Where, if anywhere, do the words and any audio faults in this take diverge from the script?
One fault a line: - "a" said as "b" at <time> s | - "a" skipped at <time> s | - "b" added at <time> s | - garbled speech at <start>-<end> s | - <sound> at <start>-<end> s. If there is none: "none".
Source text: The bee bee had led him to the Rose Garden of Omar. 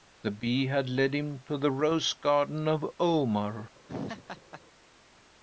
- "bee" skipped at 0.7 s
- laugh at 3.9-4.6 s